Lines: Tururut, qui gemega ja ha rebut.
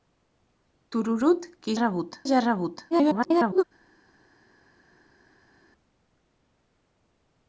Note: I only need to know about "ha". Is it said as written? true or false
true